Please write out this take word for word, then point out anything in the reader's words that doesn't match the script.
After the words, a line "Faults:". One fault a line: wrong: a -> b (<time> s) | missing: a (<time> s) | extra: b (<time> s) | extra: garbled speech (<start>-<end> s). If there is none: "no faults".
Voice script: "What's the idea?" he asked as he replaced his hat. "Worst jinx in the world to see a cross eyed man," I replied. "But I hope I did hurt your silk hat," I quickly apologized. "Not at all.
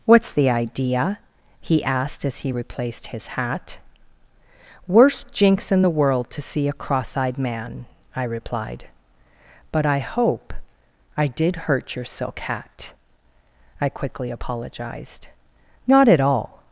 "What's the idea?" he asked as he replaced his hat. "Worst jinx in the world to see a cross eyed man," I replied. "But I hope I did hurt your silk hat," I quickly apologized. "Not at all.
Faults:
no faults